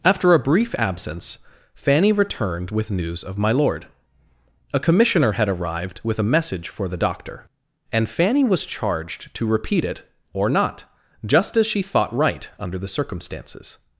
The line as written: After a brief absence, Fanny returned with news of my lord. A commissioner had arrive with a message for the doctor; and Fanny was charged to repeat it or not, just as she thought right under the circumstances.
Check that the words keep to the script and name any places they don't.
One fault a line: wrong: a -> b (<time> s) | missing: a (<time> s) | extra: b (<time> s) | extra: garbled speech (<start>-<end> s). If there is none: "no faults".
wrong: arrive -> arrived (5.5 s)